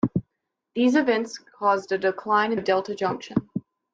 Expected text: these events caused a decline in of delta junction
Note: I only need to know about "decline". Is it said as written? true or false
true